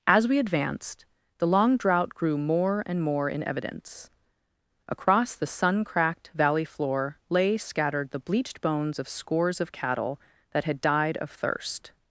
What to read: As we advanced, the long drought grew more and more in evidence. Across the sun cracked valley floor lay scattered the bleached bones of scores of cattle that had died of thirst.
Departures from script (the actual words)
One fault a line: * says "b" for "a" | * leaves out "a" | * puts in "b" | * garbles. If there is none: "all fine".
all fine